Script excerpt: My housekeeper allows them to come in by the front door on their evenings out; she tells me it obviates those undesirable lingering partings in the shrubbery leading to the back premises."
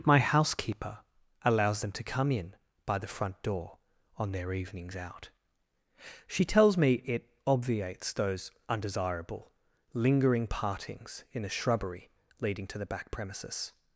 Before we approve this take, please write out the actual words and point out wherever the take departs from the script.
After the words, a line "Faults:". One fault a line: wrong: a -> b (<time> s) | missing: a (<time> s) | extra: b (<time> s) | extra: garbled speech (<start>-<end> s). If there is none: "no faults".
My housekeeper allows them to come in by the front door on their evenings out; she tells me it obviates those undesirable lingering partings in the shrubbery leading to the back premises."
Faults:
no faults